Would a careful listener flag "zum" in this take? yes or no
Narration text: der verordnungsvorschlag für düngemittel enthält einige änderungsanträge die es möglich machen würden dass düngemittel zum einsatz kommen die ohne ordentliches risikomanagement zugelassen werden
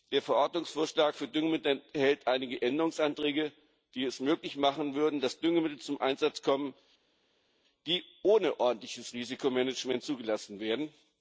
no